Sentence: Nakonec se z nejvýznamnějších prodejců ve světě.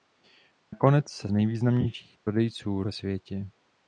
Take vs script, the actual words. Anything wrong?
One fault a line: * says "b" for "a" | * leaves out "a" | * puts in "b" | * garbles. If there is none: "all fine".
all fine